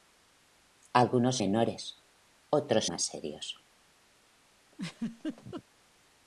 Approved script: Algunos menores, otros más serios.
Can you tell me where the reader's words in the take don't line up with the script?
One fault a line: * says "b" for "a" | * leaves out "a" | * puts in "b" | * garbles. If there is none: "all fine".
all fine